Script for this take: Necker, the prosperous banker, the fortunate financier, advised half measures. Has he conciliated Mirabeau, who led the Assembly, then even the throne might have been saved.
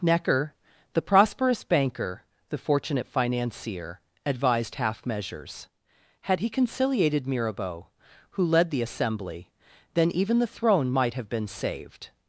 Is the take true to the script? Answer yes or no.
no